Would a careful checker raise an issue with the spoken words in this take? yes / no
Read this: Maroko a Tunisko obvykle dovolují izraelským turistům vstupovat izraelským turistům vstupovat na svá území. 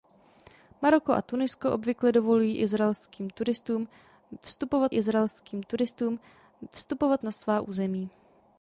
no